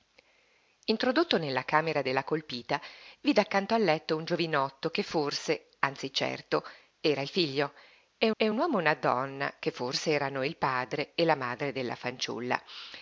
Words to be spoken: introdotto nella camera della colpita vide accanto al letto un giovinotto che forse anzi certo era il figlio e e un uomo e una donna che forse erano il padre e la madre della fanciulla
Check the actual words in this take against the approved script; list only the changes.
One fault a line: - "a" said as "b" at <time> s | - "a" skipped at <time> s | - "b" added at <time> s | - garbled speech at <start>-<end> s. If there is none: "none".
none